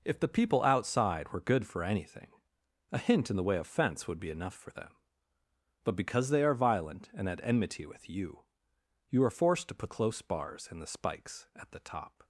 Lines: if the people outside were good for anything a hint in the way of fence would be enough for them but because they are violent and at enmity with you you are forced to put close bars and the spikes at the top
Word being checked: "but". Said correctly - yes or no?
yes